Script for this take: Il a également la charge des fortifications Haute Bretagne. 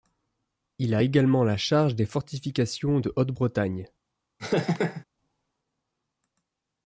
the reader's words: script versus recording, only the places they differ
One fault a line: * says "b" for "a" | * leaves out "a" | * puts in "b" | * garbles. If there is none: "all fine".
* puts in "de"